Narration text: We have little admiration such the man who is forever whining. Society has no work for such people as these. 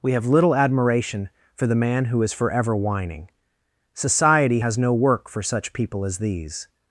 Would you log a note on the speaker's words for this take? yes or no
yes